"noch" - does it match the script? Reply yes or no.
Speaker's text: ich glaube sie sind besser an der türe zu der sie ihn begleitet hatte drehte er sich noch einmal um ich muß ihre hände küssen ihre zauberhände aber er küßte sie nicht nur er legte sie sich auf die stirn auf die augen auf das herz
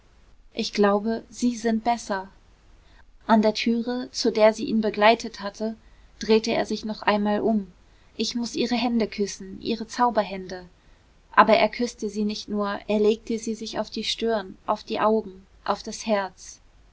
yes